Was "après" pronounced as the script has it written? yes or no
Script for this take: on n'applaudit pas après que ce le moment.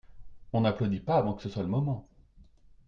no